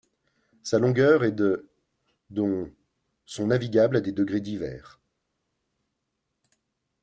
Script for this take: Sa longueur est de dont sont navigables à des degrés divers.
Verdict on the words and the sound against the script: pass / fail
pass